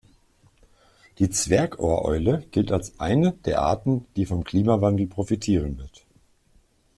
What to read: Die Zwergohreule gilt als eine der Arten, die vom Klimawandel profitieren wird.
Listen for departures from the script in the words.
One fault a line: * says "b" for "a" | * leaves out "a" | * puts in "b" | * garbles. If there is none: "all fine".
all fine